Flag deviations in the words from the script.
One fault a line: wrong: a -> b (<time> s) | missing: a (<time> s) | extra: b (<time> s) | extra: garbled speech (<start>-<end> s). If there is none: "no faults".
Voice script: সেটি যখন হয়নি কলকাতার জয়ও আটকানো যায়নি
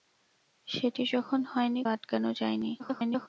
missing: কলকাতার জয়ও (1.8 s)
extra: garbled speech (2.8-3.3 s)